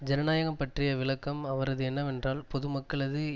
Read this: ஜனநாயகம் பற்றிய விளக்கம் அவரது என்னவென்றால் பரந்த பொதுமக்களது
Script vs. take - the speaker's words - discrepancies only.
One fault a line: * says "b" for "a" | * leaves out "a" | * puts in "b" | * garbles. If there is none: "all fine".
* leaves out "பரந்த"